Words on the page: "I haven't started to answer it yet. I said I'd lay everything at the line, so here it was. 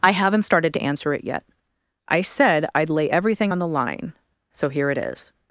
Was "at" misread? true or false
true